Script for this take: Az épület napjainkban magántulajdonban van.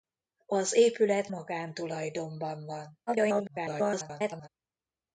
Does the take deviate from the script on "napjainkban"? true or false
true